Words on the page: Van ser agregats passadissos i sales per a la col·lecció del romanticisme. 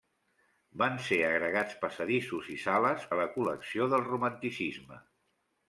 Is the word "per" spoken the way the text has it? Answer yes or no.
no